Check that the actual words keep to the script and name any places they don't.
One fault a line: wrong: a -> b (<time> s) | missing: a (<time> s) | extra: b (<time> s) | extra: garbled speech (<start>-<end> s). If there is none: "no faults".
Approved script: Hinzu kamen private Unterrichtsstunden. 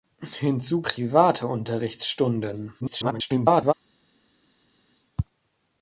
missing: kamen (0.8 s)
extra: garbled speech (2.8-3.7 s)